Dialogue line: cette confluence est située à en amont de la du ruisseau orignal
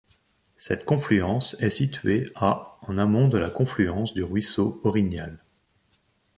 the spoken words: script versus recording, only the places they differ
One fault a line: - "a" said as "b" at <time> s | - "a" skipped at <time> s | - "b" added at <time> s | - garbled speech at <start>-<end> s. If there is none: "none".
- "confluence" added at 3.5 s